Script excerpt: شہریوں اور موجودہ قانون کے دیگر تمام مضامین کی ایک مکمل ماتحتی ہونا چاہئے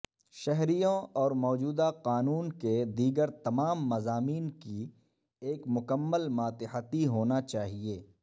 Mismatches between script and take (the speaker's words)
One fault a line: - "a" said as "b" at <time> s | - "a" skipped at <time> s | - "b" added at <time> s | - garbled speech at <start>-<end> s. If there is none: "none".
none